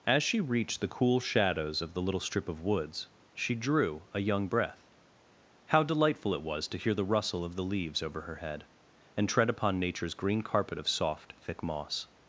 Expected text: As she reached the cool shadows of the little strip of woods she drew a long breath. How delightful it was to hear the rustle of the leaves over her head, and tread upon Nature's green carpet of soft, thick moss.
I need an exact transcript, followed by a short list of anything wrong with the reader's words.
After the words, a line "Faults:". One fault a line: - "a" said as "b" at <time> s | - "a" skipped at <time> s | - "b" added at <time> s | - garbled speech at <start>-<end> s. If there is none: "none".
As she reached the cool shadows of the little strip of woods she drew a young breath. How delightful it was to hear the rustle of the leaves over her head, and tread upon Nature's green carpet of soft, thick moss.
Faults:
- "long" said as "young" at 4.2 s